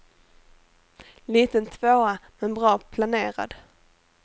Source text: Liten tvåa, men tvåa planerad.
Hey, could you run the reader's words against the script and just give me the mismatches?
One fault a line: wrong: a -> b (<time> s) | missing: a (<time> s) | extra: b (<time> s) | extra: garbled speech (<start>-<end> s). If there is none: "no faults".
wrong: tvåa -> bra (2.5 s)